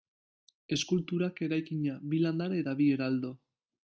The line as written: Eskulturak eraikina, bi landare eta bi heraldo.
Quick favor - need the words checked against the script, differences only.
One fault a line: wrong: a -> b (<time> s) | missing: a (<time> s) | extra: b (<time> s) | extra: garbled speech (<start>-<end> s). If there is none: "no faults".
no faults